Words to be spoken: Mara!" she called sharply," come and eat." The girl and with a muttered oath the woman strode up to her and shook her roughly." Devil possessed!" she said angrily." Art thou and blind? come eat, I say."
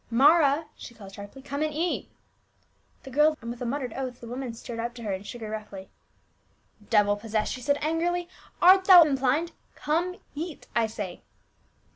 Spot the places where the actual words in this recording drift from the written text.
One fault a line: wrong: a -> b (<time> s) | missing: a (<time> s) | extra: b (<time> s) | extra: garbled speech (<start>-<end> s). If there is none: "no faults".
no faults